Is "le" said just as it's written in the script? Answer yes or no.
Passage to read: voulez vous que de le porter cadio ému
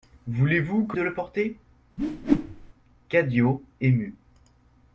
yes